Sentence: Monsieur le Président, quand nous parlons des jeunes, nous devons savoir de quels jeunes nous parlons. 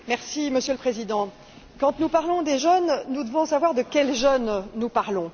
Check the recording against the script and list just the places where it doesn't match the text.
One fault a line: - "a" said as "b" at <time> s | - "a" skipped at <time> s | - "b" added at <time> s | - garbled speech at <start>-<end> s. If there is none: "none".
none